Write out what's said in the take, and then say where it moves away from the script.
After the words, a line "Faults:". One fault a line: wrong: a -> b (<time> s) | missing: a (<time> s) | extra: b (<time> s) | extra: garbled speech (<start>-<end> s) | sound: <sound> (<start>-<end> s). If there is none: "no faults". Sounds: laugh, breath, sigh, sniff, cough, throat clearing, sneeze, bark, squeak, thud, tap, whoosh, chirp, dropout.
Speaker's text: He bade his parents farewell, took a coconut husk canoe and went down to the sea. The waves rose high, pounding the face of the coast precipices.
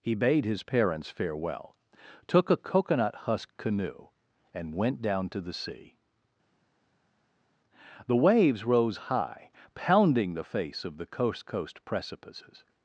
He bade his parents farewell, took a coconut husk canoe and went down to the sea. The waves rose high, pounding the face of the coast coast precipices.
Faults:
extra: coast (11.4 s)